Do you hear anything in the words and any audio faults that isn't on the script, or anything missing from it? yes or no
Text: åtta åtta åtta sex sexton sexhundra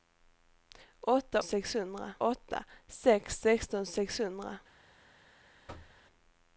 yes